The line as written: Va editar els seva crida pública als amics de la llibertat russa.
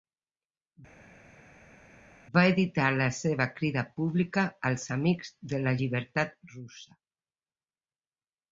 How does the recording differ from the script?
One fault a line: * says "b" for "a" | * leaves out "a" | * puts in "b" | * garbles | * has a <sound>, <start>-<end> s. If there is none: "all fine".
* says "la" for "els"